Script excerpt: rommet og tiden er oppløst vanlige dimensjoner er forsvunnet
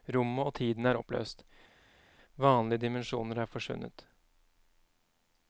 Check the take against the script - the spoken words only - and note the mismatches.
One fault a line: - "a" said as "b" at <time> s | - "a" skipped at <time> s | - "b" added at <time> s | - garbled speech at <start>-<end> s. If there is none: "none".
none